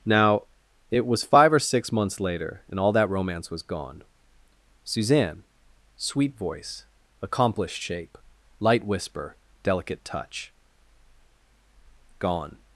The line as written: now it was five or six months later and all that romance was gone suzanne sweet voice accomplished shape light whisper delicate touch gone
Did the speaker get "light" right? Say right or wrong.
right